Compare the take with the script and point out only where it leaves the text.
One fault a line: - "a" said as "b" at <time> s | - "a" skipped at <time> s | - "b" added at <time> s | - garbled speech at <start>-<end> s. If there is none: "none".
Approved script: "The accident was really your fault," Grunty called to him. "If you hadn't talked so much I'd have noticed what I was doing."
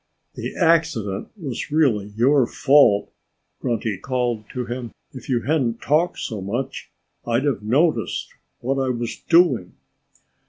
none